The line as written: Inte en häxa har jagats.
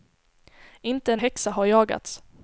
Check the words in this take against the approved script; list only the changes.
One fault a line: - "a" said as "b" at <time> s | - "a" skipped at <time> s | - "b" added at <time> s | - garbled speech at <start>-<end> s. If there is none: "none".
none